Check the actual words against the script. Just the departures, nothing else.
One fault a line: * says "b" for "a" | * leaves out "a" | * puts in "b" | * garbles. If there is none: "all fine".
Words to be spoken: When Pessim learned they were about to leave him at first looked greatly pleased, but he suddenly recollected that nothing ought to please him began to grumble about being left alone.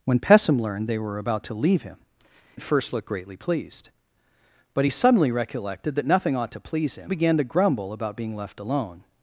all fine